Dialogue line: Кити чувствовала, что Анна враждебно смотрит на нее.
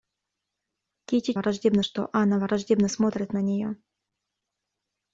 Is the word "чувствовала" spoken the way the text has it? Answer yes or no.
no